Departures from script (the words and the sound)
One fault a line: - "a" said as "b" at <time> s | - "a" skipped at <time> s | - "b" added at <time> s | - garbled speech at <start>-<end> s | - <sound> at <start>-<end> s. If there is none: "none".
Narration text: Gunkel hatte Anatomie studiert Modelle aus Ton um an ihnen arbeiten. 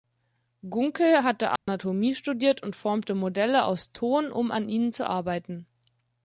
- dropout at 1.6-1.7 s
- "und formte" added at 2.6 s
- "zu" added at 4.9 s